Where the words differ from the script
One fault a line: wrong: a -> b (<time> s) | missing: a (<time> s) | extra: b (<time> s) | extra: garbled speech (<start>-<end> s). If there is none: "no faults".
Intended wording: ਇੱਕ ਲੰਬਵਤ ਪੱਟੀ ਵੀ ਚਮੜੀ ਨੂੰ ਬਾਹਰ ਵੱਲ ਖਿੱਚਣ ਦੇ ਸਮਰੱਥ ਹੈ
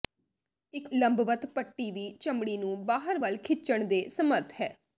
no faults